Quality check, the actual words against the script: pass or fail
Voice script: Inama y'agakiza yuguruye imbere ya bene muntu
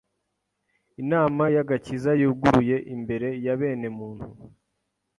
pass